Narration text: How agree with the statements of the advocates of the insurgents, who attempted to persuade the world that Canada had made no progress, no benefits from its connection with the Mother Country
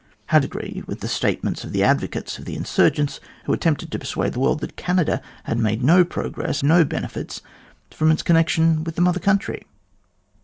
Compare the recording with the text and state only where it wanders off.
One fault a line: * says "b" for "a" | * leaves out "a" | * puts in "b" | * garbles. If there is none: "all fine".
all fine